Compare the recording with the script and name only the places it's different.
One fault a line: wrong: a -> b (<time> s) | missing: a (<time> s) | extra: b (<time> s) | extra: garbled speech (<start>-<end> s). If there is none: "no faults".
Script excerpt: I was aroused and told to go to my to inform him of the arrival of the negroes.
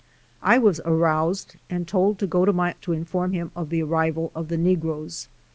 no faults